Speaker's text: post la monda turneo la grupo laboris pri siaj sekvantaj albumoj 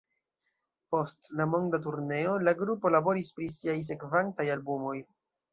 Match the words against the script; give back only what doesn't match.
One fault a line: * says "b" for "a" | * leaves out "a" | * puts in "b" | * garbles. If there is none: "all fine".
all fine